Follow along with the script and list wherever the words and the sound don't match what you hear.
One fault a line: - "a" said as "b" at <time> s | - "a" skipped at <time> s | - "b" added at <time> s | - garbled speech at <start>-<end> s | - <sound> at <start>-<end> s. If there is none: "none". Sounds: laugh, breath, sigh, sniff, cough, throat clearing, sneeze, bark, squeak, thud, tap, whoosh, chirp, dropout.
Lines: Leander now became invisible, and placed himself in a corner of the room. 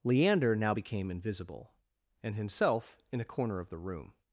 - "placed" skipped at 2.4 s